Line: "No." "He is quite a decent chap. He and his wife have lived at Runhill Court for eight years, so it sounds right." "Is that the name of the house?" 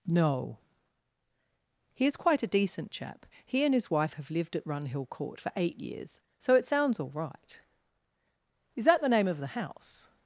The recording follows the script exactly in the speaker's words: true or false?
false